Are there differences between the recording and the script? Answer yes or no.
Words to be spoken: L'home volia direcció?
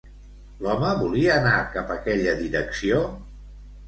yes